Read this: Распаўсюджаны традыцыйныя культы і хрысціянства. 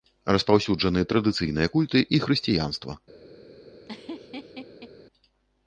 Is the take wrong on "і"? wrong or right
right